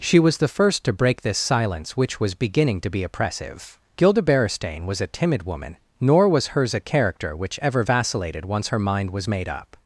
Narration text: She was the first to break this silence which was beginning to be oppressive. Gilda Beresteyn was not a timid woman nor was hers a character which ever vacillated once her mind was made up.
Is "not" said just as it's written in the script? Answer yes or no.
no